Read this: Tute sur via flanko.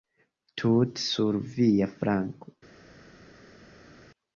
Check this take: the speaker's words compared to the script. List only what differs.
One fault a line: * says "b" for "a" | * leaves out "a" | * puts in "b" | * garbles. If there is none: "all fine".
all fine